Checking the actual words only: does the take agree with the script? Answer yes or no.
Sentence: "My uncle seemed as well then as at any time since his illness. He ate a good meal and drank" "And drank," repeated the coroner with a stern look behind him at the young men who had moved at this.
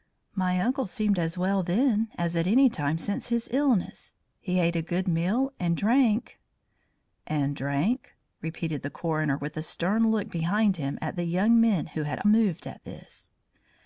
yes